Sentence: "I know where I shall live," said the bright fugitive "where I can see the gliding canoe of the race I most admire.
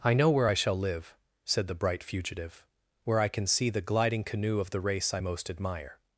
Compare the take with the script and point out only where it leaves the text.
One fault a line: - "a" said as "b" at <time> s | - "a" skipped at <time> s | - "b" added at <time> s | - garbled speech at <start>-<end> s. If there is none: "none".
none